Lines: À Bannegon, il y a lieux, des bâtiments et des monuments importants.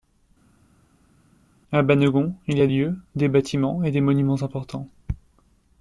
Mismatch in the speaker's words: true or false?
false